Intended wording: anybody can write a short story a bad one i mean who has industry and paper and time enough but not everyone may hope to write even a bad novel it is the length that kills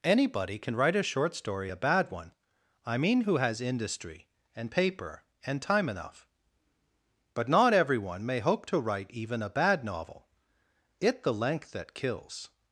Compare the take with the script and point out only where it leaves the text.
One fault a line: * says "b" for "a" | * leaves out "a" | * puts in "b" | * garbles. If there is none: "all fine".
* leaves out "is"